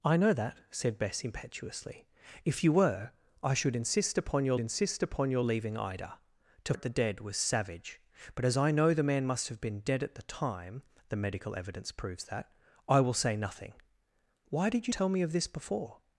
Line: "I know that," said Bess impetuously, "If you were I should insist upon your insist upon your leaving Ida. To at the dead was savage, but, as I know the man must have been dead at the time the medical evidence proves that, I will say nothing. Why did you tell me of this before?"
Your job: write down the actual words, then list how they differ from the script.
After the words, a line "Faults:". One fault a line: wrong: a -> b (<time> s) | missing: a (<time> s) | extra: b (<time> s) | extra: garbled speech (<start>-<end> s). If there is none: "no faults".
"I know that," said Bess impetuously, "If you were I should insist upon your insist upon your leaving Ida. To at the dead was savage, but, as I know the man must have been dead at the time the medical evidence proves that, I will say nothing. Why did you tell me of this before?"
Faults:
no faults